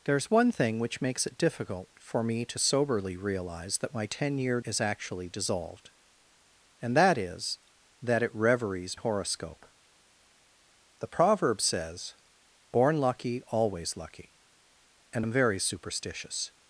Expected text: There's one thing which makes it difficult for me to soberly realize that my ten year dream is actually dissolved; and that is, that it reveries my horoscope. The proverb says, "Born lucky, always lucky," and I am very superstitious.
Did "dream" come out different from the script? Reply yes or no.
yes